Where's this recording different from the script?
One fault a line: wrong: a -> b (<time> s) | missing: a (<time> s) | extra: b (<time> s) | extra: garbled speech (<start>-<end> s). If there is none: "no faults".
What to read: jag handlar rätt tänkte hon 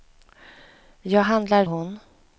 missing: rätt tänkte (1.7 s)